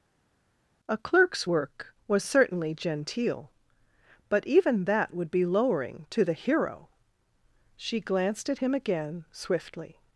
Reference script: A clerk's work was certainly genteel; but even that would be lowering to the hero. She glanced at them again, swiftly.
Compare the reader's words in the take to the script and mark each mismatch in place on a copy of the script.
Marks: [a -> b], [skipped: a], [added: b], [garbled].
A clerk's work was certainly genteel; but even that would be lowering to the hero. She glanced at [them -> him] again, swiftly.